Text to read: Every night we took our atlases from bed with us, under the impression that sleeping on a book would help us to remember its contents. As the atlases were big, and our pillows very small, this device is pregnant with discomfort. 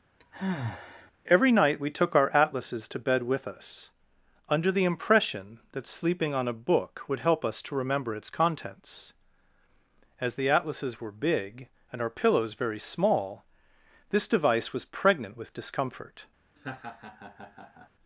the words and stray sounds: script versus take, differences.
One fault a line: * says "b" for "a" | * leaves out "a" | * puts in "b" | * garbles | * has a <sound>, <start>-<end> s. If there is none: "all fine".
* has a sigh, 0.2-1.1 s
* says "to" for "from"
* says "was" for "is"
* has a laugh, 16.6-17.9 s